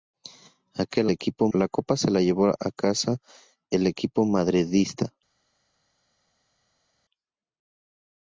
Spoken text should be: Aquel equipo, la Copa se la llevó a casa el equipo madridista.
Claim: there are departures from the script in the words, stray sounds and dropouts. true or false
false